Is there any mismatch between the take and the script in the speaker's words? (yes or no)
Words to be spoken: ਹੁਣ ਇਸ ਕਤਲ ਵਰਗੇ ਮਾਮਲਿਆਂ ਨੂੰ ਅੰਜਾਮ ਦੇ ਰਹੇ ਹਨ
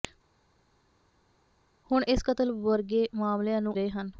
yes